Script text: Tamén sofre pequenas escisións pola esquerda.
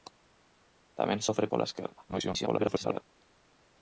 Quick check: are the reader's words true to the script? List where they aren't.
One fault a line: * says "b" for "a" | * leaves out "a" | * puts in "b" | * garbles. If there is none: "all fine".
* leaves out "pequenas escisións"
* garbles